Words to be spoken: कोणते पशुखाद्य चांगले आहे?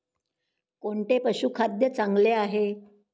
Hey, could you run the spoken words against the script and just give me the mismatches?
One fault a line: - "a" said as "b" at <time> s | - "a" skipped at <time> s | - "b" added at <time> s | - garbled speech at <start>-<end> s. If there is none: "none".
none